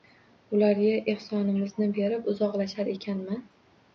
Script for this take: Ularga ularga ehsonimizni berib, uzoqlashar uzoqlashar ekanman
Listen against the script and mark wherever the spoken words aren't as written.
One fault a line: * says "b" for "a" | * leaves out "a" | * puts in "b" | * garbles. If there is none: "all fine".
* leaves out "ularga"
* leaves out "uzoqlashar"